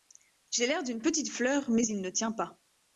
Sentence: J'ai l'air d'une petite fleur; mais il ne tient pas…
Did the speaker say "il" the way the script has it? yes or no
yes